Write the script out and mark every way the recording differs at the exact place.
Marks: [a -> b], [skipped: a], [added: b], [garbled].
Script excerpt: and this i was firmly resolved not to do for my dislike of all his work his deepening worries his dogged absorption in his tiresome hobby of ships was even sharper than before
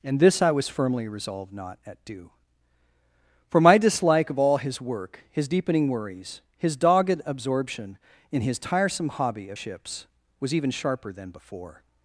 and this i was firmly resolved not [to -> at] do for my dislike of all his work his deepening worries his dogged absorption in his tiresome hobby of ships was even sharper than before